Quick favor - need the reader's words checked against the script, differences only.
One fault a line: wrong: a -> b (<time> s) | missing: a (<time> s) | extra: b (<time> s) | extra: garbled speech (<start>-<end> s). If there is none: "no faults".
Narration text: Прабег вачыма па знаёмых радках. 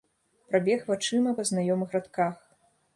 no faults